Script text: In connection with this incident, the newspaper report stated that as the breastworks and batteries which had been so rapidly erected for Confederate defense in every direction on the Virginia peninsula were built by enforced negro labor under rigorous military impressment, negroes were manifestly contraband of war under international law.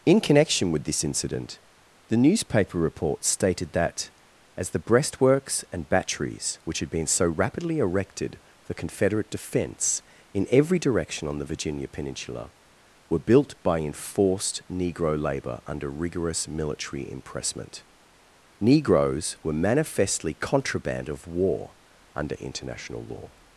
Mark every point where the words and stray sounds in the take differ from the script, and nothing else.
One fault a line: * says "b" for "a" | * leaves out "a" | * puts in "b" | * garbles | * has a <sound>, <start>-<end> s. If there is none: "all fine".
all fine